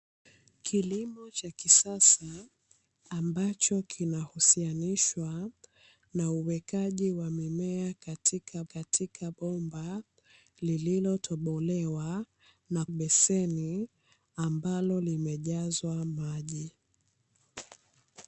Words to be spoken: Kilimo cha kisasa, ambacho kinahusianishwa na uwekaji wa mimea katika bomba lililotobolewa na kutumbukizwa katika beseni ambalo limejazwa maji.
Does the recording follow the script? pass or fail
fail